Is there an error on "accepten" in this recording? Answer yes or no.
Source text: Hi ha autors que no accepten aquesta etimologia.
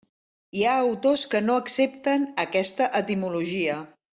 no